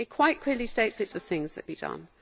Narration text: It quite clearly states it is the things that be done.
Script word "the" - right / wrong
right